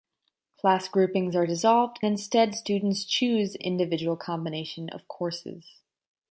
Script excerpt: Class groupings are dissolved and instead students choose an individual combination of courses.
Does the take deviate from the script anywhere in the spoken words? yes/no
yes